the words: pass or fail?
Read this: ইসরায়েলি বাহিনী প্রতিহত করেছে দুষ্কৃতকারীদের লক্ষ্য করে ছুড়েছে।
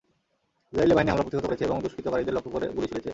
fail